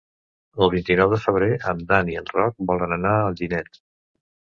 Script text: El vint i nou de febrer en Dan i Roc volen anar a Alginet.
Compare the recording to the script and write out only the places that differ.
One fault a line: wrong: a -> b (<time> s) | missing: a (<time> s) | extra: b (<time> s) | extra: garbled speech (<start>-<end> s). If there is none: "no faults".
extra: en (2.2 s)